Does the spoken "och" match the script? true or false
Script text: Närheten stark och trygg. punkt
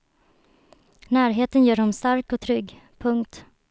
true